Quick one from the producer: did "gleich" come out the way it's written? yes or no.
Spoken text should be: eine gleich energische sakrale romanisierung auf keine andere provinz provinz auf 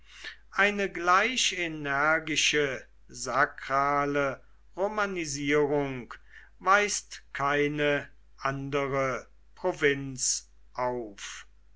yes